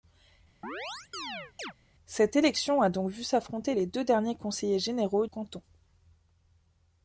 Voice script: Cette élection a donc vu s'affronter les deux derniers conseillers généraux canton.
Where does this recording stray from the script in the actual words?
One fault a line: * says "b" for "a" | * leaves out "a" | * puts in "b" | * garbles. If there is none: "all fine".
all fine